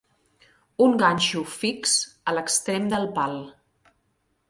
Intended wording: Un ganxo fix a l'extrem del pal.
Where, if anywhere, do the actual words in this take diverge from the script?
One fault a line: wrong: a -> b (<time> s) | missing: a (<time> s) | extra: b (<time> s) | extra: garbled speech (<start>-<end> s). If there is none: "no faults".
no faults